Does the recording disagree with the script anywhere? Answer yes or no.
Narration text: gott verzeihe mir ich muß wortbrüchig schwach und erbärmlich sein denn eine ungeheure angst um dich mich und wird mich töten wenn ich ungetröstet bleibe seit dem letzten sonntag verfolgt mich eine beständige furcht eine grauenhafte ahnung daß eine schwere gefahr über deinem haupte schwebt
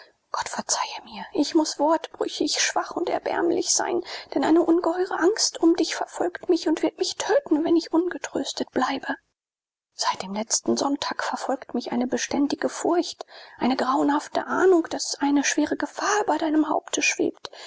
yes